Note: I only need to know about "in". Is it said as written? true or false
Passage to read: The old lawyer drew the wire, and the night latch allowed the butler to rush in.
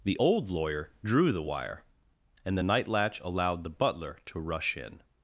true